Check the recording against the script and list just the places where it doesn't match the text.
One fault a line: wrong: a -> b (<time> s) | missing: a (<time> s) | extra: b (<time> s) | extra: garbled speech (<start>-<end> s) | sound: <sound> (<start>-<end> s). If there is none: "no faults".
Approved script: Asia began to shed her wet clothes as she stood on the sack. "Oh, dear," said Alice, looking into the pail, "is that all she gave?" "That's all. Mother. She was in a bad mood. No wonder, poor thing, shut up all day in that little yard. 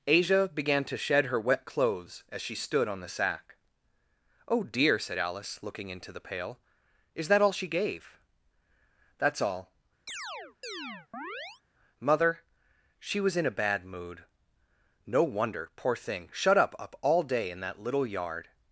sound: chirp (10.1-11.6 s)
extra: up (16.8 s)